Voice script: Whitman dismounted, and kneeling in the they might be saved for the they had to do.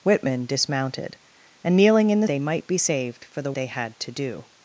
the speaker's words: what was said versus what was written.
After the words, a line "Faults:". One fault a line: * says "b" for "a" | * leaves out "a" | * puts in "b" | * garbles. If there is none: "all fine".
Whitman dismounted, and kneeling in the they might be saved for the they had to do.
Faults:
all fine